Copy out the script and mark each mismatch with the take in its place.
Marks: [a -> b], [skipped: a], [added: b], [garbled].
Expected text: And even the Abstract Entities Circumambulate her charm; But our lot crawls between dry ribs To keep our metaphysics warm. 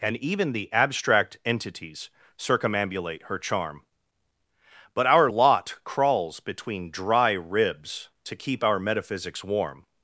And even the Abstract Entities Circumambulate her charm; But our lot crawls between dry ribs To keep our metaphysics warm.